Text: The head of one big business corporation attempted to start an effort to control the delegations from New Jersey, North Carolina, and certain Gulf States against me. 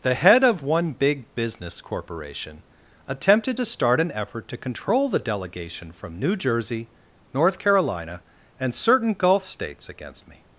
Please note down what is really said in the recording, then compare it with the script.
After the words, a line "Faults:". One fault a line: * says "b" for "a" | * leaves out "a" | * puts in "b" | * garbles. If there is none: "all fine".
The head of one big business corporation attempted to start an effort to control the delegation from New Jersey, North Carolina, and certain Gulf States against me.
Faults:
* says "delegation" for "delegations"